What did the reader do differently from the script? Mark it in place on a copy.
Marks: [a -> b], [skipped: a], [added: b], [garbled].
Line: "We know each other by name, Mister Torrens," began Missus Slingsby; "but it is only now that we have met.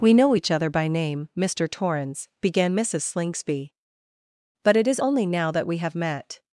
"We know each other by name, Mister Torrens," began Missus Slingsby; "but it is only now that we have met.